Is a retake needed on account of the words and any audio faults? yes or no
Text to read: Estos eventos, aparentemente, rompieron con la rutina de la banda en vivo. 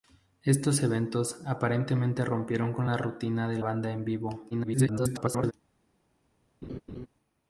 yes